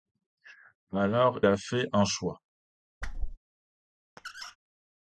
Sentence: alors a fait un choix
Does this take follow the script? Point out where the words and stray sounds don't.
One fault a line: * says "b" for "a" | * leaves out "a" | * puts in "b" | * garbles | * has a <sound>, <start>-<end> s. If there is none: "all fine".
* has a whoosh, 3.0-3.4 s
* has a squeak, 4.2-4.6 s